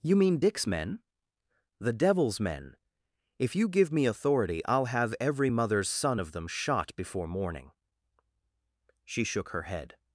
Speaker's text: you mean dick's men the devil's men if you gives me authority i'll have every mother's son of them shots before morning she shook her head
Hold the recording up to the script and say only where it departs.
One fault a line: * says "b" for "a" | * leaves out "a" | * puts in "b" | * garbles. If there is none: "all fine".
* says "give" for "gives"
* says "shot" for "shots"